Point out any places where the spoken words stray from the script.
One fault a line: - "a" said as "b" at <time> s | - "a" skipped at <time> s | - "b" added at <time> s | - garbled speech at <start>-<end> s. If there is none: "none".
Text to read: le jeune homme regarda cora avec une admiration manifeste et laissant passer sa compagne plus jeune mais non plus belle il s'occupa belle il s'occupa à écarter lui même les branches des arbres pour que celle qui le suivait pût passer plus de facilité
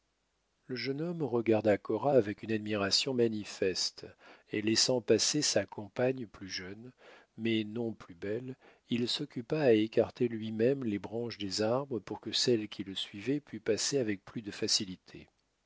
- "belle il s'occupa" skipped at 9.6 s
- "avec" added at 14.0 s